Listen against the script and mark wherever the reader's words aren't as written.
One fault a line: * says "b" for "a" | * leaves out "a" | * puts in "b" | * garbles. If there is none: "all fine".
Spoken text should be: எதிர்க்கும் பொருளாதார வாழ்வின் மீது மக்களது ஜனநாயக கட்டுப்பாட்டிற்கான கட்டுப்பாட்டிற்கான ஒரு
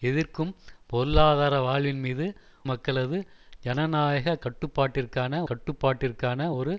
all fine